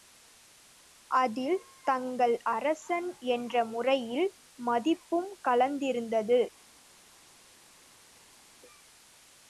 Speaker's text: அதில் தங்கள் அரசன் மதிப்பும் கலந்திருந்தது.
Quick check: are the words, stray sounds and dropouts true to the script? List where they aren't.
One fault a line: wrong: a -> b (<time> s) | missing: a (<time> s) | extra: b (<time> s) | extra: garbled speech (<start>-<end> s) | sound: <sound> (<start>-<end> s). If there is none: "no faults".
extra: என்ற முறையில் (3.3 s)